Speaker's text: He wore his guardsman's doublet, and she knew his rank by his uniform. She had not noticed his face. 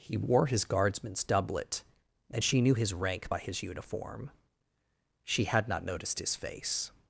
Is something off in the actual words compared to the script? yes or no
no